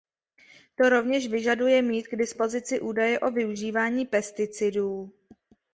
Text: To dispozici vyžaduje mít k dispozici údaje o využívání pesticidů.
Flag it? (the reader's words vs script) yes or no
yes